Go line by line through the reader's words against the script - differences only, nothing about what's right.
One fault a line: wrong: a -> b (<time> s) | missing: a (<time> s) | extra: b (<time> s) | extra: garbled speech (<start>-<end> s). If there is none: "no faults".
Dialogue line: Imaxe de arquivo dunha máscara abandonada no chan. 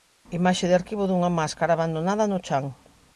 no faults